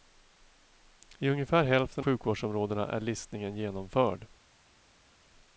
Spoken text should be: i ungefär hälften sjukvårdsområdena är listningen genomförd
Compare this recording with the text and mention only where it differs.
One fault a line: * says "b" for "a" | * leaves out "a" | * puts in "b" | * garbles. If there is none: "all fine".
all fine